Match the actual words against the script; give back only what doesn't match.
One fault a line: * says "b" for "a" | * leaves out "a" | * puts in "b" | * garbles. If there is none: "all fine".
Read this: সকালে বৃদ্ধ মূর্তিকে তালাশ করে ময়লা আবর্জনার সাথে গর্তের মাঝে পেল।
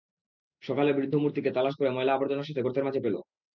all fine